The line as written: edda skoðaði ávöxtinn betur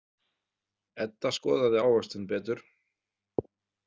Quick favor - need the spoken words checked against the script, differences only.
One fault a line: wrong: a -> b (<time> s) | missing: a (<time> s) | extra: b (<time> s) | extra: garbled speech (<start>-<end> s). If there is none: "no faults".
no faults